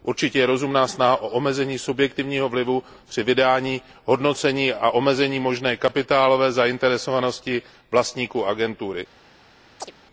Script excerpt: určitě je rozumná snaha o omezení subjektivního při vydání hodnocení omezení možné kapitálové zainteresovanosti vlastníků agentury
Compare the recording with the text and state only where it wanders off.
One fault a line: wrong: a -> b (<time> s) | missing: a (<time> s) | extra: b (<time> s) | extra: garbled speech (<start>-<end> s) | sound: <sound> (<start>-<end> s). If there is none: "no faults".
extra: vlivu (2.5 s)
extra: a (4.7 s)
sound: chirp (9.8-9.9 s)